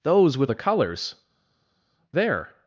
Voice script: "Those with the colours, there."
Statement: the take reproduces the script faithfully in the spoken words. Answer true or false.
true